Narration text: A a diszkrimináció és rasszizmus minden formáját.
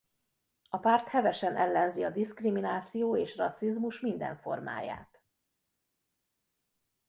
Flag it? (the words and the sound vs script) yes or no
yes